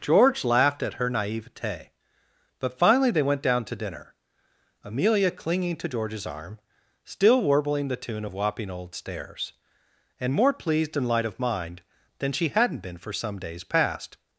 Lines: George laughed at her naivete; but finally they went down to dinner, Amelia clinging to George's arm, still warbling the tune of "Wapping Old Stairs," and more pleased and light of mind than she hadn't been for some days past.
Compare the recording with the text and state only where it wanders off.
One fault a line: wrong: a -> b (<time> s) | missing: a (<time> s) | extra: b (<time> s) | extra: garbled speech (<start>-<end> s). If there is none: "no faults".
no faults